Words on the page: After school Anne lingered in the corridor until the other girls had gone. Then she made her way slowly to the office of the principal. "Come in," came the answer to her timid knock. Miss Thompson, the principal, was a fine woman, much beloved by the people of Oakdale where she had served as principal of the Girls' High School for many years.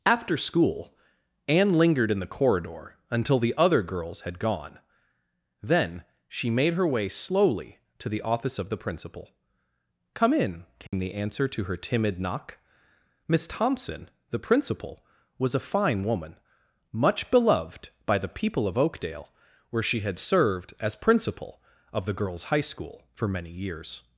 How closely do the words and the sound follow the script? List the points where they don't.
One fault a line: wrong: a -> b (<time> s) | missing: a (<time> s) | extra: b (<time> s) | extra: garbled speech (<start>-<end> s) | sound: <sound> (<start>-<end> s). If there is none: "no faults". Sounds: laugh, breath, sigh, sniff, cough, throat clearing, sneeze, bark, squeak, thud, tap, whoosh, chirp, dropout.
sound: dropout (10.9-10.9 s)